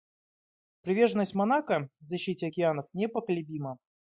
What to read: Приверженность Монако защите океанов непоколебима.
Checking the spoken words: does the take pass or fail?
pass